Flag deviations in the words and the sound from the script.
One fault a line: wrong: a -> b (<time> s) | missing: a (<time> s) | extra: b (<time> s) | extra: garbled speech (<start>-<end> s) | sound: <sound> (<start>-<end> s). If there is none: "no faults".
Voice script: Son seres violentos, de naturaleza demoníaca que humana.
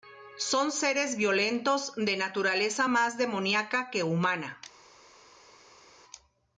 extra: más (2.9 s)